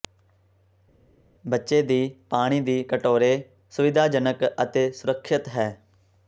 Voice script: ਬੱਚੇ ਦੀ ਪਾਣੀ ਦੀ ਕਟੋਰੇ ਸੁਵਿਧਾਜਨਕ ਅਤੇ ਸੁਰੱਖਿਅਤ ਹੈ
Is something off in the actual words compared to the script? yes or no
no